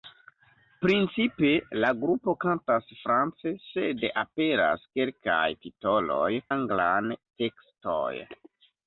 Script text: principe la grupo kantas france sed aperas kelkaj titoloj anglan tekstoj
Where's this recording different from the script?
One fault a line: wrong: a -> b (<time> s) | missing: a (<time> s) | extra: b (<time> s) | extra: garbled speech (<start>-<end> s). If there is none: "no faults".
no faults